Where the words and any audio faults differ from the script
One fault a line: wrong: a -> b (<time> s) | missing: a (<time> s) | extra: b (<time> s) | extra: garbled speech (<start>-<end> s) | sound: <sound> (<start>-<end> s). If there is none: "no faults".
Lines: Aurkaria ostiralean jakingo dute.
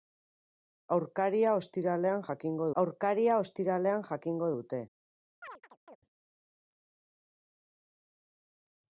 extra: aurkaria ostiralean jakingo (2.8 s)
sound: chirp (5.4-6.0 s)